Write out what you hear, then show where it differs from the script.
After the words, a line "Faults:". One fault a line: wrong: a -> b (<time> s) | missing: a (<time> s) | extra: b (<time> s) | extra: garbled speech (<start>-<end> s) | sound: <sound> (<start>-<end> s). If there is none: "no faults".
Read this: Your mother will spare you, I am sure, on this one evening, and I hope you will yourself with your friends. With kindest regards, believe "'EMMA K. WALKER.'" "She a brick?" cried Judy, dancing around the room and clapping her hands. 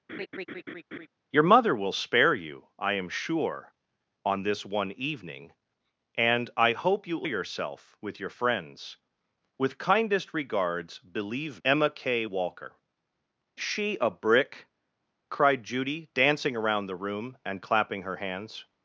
Your mother will spare you, I am sure, on this one evening, and I hope you will yourself with your friends. With kindest regards, believe "'EMMA K. WALKER.'" "She a brick?" cried Judy, dancing around the room and clapping her hands.
Faults:
sound: laugh (0.1-1.1 s)